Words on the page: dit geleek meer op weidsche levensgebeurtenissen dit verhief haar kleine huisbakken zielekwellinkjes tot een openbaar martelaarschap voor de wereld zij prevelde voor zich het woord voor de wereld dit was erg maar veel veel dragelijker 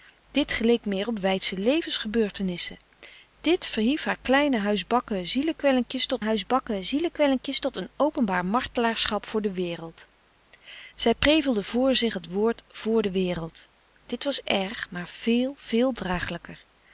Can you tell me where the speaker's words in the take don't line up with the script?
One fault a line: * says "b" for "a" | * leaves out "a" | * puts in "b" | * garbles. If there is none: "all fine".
* puts in "huisbakken zielekwellinkjes tot"